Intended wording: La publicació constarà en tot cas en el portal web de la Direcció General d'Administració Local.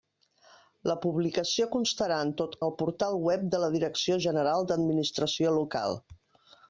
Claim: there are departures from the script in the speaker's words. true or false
true